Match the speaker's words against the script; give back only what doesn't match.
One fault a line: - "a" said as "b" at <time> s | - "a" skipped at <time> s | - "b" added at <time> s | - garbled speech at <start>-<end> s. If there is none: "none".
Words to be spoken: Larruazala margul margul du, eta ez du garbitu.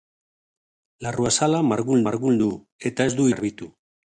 none